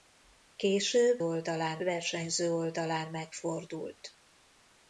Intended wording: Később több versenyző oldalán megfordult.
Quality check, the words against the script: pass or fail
fail